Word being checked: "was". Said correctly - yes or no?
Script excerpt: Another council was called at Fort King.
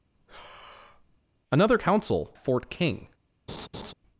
no